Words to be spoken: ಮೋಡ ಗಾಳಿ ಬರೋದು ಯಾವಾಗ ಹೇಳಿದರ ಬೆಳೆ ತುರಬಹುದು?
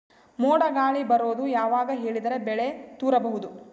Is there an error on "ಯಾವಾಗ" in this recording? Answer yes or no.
no